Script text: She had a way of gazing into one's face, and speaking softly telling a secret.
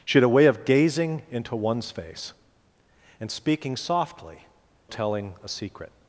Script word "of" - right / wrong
right